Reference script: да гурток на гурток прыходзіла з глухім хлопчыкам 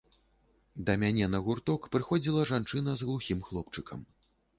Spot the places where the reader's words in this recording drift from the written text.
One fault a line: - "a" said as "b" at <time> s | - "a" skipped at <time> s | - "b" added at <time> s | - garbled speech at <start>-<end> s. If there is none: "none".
- "гурток" said as "мяне" at 1.0 s
- "жанчына" added at 2.5 s